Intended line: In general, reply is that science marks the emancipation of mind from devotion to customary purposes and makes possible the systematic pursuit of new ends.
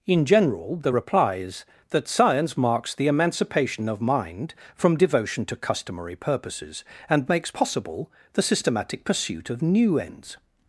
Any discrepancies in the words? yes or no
yes